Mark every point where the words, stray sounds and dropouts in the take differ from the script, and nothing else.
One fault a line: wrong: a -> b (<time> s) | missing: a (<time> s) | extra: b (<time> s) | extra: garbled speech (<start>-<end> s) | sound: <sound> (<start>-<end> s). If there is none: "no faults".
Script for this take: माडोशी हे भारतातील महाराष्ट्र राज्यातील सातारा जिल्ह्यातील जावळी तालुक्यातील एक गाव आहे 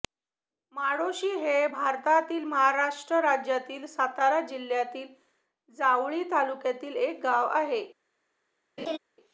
sound: laugh (8.8-9.0 s)